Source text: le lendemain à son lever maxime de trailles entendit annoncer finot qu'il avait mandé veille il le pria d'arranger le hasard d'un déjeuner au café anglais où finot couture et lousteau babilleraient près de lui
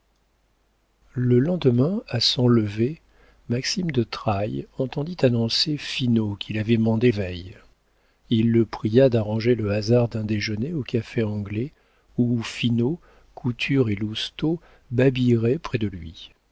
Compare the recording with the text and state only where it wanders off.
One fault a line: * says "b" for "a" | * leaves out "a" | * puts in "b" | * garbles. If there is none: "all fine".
all fine